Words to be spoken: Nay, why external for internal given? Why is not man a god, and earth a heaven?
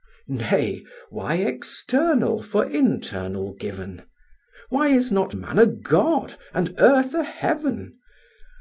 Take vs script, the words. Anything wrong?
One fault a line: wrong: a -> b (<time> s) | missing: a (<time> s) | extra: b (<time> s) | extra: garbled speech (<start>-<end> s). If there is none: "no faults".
no faults